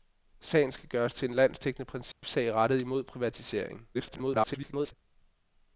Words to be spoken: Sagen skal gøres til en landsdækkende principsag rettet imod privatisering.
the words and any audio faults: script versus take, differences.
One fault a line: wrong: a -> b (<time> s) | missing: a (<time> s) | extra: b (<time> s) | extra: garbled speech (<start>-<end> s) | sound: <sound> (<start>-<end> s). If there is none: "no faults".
sound: dropout (2.1-2.2 s)
extra: garbled speech (3.9-4.9 s)